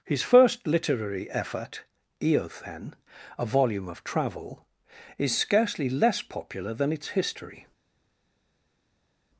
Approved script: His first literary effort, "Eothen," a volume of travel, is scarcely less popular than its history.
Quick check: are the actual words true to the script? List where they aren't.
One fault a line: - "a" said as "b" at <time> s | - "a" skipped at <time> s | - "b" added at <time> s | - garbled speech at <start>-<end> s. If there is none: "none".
none